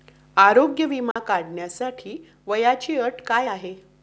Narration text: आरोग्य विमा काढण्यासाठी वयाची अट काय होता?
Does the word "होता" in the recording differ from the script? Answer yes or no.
yes